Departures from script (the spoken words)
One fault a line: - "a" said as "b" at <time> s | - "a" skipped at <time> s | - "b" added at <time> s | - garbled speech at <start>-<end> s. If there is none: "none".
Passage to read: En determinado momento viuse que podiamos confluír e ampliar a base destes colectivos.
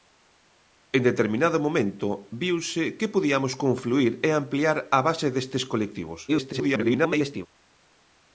- garbled speech at 6.3-7.5 s